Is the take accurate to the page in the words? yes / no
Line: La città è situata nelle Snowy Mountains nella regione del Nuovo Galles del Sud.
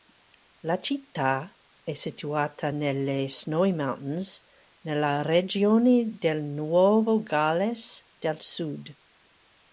yes